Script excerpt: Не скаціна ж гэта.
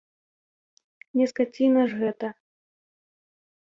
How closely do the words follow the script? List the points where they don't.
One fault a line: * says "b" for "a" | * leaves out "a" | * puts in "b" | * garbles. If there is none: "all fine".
all fine